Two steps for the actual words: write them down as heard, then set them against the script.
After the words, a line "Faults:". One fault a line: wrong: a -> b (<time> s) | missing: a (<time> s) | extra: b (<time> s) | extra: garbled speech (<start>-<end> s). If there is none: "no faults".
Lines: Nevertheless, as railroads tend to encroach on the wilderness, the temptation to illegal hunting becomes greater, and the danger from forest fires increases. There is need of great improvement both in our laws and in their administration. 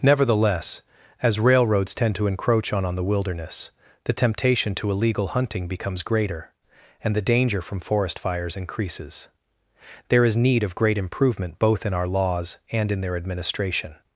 Nevertheless, as railroads tend to encroach on on the wilderness, the temptation to illegal hunting becomes greater, and the danger from forest fires increases. There is need of great improvement both in our laws and in their administration.
Faults:
extra: on (2.9 s)